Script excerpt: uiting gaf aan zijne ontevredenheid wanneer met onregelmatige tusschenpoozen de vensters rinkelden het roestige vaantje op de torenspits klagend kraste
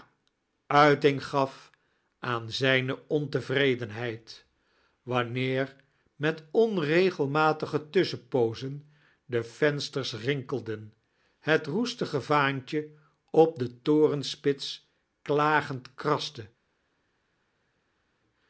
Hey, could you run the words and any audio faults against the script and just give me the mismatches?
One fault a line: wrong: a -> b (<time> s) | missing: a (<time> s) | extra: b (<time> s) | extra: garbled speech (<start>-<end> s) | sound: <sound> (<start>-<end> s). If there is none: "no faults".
no faults